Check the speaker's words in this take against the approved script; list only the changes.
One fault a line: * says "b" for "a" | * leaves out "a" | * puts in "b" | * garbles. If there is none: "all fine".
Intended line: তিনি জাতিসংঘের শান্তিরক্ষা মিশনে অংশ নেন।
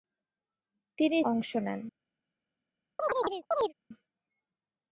* leaves out "জাতিসংঘের শান্তিরক্ষা মিশনে"